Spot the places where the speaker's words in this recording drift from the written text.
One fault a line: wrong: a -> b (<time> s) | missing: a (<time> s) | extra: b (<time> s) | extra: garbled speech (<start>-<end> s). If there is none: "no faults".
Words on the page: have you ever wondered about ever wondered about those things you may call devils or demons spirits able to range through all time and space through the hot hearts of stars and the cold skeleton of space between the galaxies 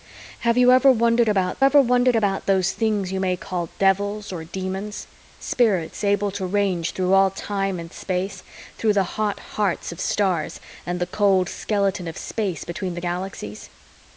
no faults